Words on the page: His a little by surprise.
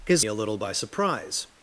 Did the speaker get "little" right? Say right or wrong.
right